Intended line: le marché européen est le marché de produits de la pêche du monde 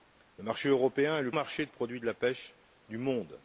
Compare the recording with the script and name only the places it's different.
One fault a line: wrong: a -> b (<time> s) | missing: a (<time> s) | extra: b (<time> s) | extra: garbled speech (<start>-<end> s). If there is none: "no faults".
no faults